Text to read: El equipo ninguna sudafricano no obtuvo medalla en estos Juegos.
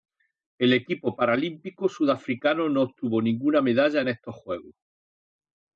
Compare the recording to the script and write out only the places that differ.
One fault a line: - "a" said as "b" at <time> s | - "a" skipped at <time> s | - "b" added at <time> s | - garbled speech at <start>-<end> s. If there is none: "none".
- "ninguna" said as "paralímpico" at 1.1 s
- "ninguna" added at 3.2 s